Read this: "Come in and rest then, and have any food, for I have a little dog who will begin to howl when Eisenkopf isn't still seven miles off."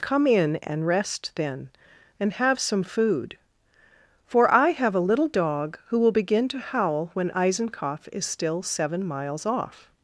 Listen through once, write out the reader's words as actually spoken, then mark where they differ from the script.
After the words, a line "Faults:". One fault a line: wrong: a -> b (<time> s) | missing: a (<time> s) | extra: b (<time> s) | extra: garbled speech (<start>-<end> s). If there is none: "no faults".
"Come in and rest then, and have some food, for I have a little dog who will begin to howl when Eisenkopf is still seven miles off."
Faults:
wrong: any -> some (2.6 s)
wrong: isn't -> is (8.1 s)